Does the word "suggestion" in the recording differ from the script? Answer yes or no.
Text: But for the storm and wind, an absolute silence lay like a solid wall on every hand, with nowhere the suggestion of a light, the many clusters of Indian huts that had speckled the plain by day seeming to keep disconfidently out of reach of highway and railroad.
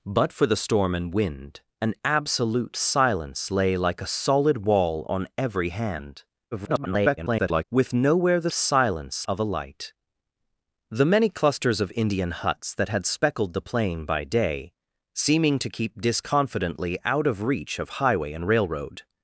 yes